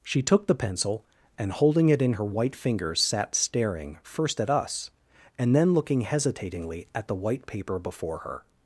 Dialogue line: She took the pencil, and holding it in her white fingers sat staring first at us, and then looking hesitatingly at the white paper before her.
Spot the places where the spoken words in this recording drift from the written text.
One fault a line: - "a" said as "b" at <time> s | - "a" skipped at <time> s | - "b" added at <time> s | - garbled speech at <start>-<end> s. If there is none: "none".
none